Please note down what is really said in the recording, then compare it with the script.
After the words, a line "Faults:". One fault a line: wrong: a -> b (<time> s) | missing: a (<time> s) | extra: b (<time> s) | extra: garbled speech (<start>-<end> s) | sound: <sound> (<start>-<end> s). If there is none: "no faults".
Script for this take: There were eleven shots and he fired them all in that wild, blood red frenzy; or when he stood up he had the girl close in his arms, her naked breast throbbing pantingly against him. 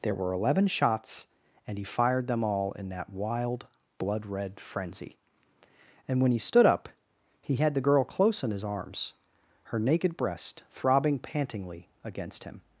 There were eleven shots and he fired them all in that wild, blood red frenzy; and when he stood up he had the girl close in his arms, her naked breast throbbing pantingly against him.
Faults:
wrong: or -> and (6.1 s)